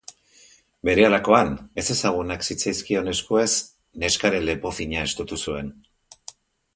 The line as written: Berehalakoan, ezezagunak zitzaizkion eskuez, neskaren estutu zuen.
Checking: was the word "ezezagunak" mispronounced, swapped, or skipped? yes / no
no